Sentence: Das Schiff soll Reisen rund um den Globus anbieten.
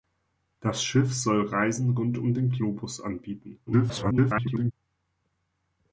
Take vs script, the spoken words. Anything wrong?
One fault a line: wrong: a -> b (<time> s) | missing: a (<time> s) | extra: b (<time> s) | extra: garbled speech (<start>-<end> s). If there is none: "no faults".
extra: garbled speech (3.7-4.7 s)